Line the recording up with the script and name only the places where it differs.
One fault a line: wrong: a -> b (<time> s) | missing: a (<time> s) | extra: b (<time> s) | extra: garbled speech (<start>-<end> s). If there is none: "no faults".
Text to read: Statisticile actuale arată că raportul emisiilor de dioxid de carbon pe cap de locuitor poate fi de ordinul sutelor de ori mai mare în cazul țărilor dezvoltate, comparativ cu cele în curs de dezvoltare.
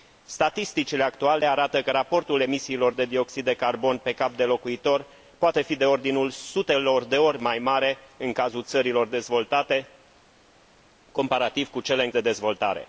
missing: curs (12.1 s)